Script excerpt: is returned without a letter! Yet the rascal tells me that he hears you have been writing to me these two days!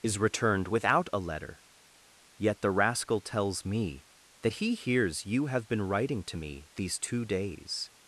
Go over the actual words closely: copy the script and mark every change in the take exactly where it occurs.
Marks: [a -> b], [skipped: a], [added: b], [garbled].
is returned without a letter! Yet the rascal tells me that he hears you have been writing to me these two days!